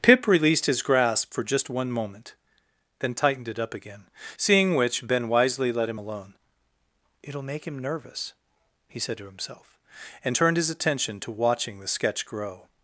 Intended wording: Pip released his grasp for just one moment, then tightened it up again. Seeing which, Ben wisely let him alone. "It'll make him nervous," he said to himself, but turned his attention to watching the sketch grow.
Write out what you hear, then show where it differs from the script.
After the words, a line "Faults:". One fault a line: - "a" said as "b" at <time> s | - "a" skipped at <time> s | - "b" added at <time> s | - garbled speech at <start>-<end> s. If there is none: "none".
Pip released his grasp for just one moment, then tightened it up again. Seeing which, Ben wisely let him alone. "It'll make him nervous," he said to himself, and turned his attention to watching the sketch grow.
Faults:
- "but" said as "and" at 10.2 s